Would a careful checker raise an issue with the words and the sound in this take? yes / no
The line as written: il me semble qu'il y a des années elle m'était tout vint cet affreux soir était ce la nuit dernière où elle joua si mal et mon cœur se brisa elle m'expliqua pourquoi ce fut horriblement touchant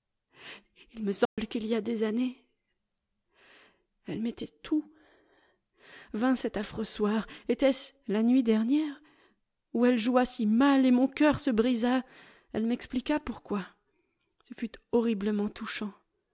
yes